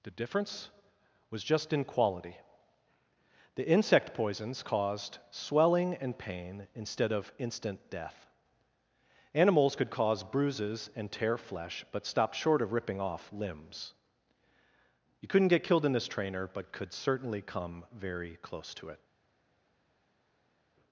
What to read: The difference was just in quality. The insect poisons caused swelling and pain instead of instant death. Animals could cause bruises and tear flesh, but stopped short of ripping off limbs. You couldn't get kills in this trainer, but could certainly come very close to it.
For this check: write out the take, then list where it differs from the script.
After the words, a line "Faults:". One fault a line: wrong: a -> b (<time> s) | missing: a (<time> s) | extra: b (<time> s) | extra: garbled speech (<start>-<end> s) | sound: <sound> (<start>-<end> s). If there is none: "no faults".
The difference was just in quality. The insect poisons caused swelling and pain instead of instant death. Animals could cause bruises and tear flesh, but stopped short of ripping off limbs. You couldn't get killed in this trainer, but could certainly come very close to it.
Faults:
wrong: kills -> killed (15.6 s)